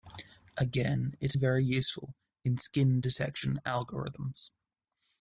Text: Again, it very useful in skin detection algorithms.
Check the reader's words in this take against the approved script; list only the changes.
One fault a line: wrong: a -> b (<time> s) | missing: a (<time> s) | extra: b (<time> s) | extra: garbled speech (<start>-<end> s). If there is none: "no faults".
no faults